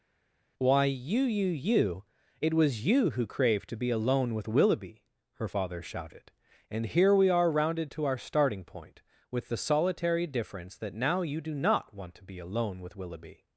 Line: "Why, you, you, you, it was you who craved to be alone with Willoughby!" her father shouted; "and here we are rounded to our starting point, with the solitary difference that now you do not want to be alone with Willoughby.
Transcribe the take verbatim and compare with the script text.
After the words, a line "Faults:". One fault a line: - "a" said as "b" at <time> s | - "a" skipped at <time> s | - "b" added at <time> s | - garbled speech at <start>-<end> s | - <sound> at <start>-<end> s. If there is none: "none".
"Why, you, you, you, it was you who craved to be alone with Willoughby!" her father shouted; "and here we are rounded to our starting point, with the solitary difference that now you do not want to be alone with Willoughby.
Faults:
none